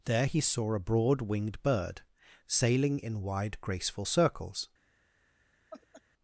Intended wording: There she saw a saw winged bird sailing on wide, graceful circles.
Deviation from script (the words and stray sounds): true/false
true